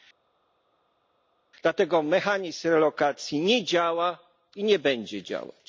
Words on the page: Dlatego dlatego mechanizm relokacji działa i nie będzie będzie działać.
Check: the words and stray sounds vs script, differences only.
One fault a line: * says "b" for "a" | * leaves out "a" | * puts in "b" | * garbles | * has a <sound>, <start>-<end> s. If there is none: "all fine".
* leaves out "dlatego"
* puts in "nie"
* leaves out "będzie"